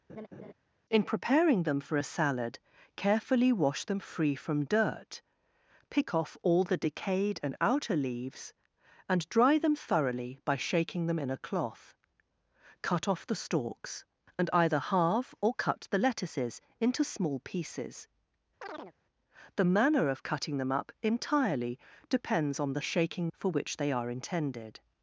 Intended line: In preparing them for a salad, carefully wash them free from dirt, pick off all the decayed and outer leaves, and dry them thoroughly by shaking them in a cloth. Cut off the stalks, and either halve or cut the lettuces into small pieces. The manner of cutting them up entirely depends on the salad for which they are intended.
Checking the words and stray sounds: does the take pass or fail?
fail